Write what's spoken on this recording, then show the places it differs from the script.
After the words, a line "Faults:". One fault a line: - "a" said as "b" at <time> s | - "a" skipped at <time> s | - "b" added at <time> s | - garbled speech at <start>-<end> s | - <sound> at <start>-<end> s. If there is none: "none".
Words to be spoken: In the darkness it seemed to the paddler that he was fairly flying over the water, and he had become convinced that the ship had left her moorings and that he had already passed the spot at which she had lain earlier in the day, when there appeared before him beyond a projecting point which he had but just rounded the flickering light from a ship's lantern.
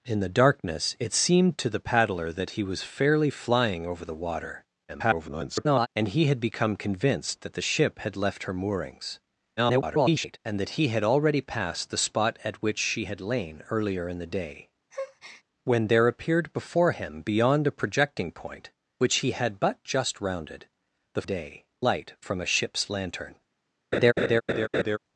In the darkness it seemed to the paddler that he was fairly flying over the water, [garbled] and he had become convinced that the ship had left her moorings [garbled] and that he had already passed the spot at which she had lain earlier in the day, when there appeared before him beyond a projecting point which he had but just rounded the day light from a ship's lantern.
Faults:
- garbled speech at 4.9-5.9 s
- garbled speech at 9.6-10.4 s
- breath at 14.9-15.4 s
- "flickering" said as "day" at 21.2 s
- laugh at 23.9-25.0 s